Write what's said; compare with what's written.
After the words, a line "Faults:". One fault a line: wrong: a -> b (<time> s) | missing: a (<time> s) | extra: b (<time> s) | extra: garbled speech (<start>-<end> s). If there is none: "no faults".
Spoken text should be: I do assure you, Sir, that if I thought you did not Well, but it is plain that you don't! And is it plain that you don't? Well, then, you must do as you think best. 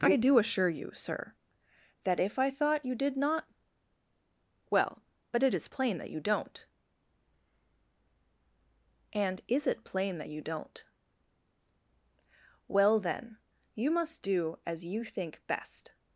I do assure you, Sir, that if I thought you did not Well, but it is plain that you don't! And is it plain that you don't? Well, then, you must do as you think best.
Faults:
no faults